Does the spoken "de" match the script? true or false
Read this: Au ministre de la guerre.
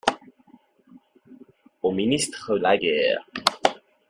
false